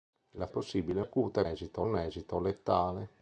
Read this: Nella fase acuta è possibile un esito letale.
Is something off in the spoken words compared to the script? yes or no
yes